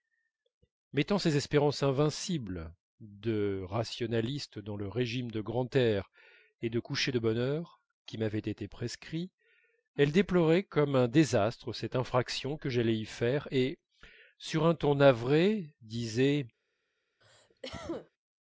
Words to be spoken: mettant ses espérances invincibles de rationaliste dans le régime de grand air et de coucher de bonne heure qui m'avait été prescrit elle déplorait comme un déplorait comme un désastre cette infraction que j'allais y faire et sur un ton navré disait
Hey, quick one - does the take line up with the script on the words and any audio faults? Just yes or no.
no